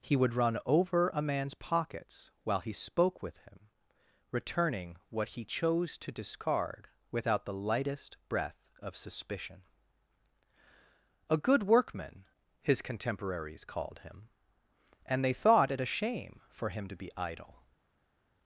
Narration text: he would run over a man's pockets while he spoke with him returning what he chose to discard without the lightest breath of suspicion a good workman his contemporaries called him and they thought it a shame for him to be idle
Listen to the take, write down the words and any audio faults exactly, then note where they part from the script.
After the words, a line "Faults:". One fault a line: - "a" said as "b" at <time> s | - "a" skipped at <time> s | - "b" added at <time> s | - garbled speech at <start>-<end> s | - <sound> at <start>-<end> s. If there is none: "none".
he would run over a man's pockets while he spoke with him returning what he chose to discard without the lightest breath of suspicion a good workman his contemporaries called him and they thought it a shame for him to be idle
Faults:
none